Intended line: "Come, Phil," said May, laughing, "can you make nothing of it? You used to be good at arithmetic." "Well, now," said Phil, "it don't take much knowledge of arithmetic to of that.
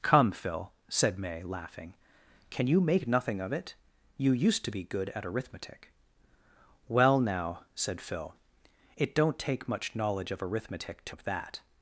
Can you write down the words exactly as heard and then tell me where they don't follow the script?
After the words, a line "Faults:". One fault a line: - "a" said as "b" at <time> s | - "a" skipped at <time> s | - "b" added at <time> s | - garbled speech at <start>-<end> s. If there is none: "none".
"Come, Phil," said May, laughing, "can you make nothing of it? You used to be good at arithmetic." "Well, now," said Phil, "it don't take much knowledge of arithmetic to of that.
Faults:
none